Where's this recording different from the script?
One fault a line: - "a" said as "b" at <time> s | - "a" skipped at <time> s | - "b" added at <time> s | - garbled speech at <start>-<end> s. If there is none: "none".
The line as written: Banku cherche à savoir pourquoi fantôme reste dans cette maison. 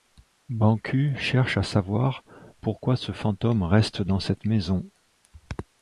- "ce" added at 3.0 s